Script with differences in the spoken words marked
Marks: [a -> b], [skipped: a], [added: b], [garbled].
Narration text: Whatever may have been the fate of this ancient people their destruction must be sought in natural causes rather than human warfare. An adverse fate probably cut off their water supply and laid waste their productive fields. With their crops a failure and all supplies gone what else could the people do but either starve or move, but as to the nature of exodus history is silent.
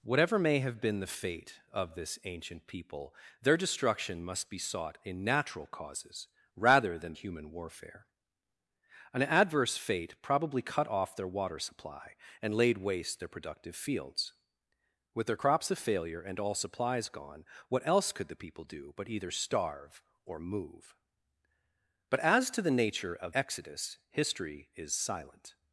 Whatever may have been the fate of this ancient people their destruction must be sought in natural causes rather than human warfare. An adverse fate probably cut off their water supply and laid waste their productive fields. With their crops a failure and all supplies gone what else could the people do but either starve or move, but as to the nature of exodus history is silent.